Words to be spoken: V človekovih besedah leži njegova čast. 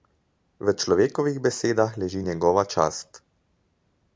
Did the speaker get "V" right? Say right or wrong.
right